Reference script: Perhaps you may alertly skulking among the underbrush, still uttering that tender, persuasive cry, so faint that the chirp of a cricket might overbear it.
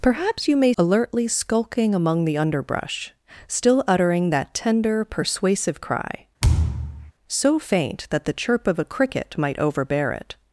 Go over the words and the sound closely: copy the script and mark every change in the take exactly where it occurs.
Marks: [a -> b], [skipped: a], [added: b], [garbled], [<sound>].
Perhaps you may alertly skulking among the underbrush, still uttering that tender, persuasive cry, [thud] so faint that the chirp of a cricket might overbear it.